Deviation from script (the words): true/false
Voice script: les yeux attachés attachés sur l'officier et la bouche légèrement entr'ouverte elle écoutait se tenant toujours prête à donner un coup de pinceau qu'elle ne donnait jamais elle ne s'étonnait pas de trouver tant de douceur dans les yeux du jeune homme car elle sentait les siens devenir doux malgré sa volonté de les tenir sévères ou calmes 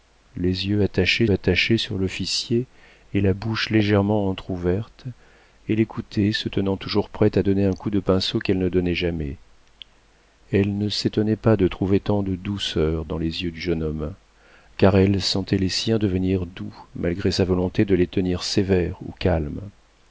false